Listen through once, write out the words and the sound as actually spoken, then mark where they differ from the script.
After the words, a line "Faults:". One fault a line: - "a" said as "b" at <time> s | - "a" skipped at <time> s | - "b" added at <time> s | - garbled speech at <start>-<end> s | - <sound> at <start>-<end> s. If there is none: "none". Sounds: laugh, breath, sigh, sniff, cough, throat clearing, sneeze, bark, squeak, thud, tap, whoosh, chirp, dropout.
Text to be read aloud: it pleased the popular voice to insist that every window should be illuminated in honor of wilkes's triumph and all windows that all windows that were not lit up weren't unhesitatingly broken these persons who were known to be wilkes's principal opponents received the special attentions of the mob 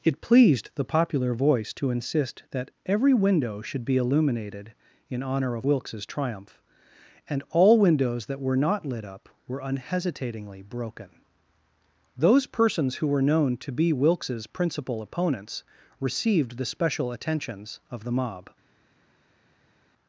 it pleased the popular voice to insist that every window should be illuminated in honor of wilkes's triumph and all windows that were not lit up were unhesitatingly broken those persons who were known to be wilkes's principal opponents received the special attentions of the mob
Faults:
- "all windows that" skipped at 8.4 s
- "weren't" said as "were" at 9.5 s
- "these" said as "those" at 12.2 s